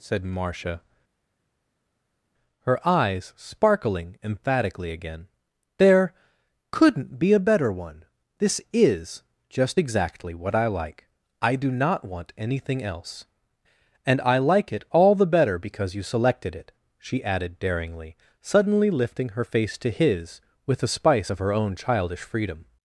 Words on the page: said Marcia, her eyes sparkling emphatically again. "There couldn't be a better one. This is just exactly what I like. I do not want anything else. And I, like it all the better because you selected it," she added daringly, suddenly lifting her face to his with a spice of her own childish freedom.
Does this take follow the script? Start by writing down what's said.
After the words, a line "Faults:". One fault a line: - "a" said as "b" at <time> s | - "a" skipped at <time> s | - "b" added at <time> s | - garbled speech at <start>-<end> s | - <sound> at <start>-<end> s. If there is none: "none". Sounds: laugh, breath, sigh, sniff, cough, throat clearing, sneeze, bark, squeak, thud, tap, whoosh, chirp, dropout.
said Marcia, her eyes sparkling emphatically again. "There couldn't be a better one. This is just exactly what I like. I do not want anything else. And I, like it all the better because you selected it," she added daringly, suddenly lifting her face to his with a spice of her own childish freedom.
Faults:
none